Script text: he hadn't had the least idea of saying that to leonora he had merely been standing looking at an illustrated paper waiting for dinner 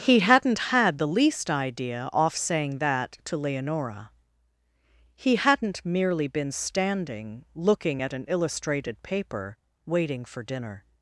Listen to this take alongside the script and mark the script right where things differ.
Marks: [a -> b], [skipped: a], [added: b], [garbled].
he hadn't had the least idea [of -> off] saying that to leonora he [had -> hadn't] merely been standing looking at an illustrated paper waiting for dinner